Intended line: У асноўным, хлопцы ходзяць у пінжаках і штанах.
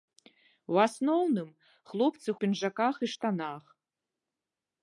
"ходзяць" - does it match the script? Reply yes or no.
no